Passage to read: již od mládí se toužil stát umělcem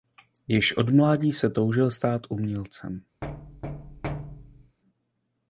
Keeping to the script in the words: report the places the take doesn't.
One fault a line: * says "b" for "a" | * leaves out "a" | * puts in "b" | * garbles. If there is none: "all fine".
all fine